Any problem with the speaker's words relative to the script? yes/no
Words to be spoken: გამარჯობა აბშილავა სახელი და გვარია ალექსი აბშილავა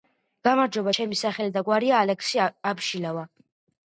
yes